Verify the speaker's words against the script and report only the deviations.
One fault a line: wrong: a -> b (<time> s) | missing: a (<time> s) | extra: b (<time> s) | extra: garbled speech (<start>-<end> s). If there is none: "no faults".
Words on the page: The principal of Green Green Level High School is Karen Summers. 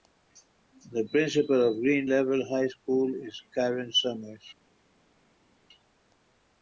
missing: Green (2.1 s)